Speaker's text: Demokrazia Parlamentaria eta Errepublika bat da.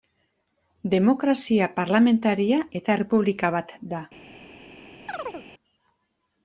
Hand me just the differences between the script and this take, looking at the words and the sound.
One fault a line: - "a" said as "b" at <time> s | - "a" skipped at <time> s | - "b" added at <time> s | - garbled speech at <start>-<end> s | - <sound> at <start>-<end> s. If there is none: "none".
- chirp at 5.1-5.5 s